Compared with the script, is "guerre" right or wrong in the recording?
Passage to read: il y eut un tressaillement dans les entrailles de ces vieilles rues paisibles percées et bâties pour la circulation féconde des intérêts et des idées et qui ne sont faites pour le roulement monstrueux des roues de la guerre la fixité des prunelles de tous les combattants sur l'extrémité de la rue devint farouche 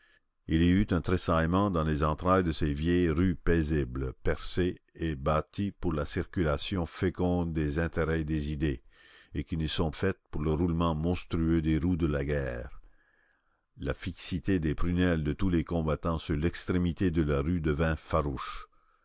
right